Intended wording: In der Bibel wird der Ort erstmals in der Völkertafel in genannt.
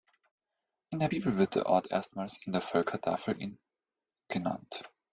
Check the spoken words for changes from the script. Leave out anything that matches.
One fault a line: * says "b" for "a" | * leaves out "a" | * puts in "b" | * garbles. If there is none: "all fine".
all fine